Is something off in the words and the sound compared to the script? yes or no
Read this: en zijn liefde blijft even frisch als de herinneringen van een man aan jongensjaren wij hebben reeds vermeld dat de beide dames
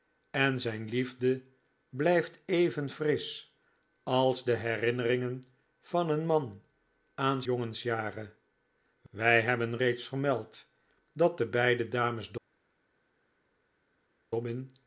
no